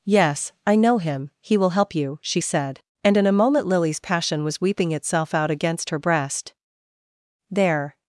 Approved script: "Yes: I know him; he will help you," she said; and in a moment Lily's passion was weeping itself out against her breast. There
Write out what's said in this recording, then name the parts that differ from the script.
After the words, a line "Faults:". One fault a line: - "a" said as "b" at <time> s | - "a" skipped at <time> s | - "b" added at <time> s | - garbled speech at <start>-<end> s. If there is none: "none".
"Yes: I know him; he will help you," she said; and in a moment Lily's passion was weeping itself out against her breast. There
Faults:
none